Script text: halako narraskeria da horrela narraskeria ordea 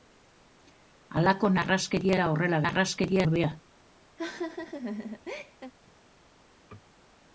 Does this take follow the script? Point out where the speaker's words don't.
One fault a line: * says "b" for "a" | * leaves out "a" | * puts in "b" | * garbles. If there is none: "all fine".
all fine